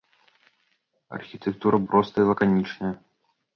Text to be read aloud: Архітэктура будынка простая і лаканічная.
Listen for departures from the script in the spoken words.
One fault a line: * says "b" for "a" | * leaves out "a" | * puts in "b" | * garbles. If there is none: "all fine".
* leaves out "будынка"